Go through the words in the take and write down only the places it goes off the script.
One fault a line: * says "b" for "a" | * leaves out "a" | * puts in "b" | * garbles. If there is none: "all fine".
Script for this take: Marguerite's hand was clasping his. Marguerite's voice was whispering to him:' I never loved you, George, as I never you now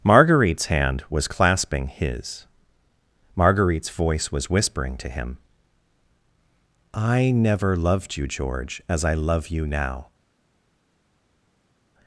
* says "love" for "never"